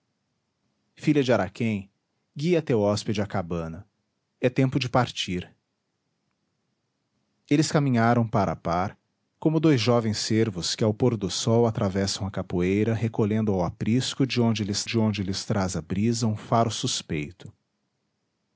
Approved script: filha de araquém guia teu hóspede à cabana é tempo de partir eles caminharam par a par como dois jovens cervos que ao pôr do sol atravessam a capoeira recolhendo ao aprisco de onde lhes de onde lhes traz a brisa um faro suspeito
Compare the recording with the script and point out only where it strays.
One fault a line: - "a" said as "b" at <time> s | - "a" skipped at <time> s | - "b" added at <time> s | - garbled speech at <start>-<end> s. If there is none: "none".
none